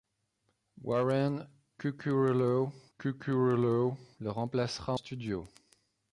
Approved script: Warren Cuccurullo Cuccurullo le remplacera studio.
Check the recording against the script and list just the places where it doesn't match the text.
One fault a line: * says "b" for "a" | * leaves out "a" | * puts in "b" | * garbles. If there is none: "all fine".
all fine